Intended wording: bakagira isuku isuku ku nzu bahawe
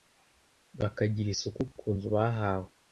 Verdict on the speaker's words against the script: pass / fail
fail